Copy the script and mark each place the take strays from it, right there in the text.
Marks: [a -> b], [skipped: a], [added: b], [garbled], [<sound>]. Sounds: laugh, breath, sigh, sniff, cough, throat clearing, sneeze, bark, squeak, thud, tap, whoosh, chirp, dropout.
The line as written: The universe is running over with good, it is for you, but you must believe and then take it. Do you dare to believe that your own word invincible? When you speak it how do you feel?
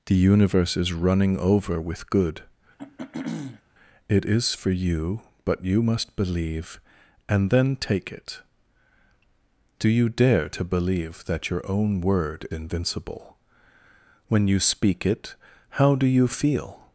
The universe is running over with good, [throat clearing] it is for you, but you must believe and then take it. Do you dare to believe that your own word invincible? When you speak it how do you feel?